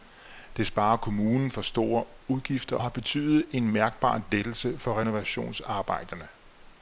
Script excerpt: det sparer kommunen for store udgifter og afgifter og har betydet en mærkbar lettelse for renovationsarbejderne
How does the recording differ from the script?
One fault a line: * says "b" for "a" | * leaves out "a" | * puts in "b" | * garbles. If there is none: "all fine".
* leaves out "og afgifter og"